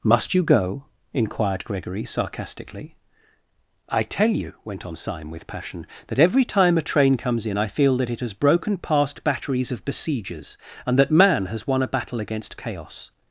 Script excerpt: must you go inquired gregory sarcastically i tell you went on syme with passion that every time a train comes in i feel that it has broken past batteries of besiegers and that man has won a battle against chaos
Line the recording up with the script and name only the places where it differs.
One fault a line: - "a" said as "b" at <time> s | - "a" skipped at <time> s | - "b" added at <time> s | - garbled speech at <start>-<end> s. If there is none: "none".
none